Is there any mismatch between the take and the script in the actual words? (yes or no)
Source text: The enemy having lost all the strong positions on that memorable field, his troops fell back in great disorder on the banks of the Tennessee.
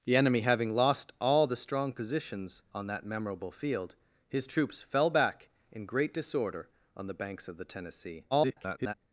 yes